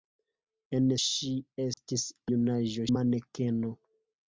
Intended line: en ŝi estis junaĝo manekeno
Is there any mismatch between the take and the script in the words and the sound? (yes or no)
yes